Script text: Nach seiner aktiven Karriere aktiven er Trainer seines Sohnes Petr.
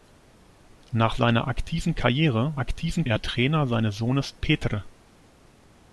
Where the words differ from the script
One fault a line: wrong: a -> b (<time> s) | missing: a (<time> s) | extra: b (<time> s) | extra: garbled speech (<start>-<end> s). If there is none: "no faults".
no faults